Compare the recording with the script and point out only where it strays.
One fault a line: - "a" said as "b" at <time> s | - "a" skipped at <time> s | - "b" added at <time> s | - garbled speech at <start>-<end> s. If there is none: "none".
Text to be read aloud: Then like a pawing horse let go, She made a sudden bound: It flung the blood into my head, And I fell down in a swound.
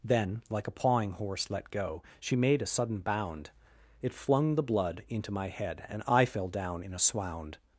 none